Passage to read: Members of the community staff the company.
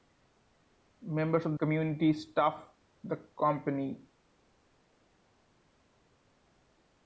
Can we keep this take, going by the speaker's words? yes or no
no